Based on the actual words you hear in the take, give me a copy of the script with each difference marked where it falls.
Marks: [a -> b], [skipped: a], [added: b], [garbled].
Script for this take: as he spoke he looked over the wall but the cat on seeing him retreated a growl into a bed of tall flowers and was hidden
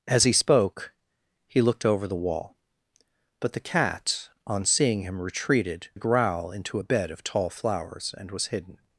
as he spoke he looked over the wall but the cat on seeing him retreated a growl into a bed of tall flowers and was hidden